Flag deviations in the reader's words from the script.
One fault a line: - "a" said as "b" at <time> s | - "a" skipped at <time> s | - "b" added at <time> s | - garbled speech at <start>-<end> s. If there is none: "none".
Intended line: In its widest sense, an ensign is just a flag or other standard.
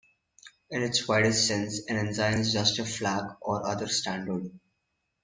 none